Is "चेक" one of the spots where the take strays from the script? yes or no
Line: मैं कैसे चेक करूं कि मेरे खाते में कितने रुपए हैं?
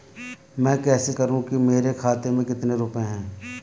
yes